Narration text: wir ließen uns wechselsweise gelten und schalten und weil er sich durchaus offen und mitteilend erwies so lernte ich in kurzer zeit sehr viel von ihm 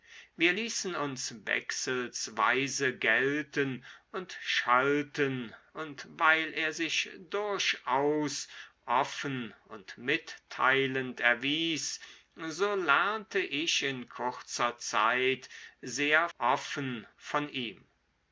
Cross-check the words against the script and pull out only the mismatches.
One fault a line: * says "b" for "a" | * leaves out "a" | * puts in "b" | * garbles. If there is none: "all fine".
* says "offen" for "viel"